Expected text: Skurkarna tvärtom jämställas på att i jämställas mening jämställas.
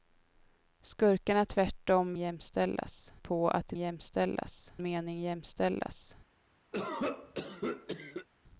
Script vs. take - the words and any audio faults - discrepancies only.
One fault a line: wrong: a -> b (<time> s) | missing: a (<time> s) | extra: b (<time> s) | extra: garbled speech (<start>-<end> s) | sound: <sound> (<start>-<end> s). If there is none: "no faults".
sound: cough (6.7-8.3 s)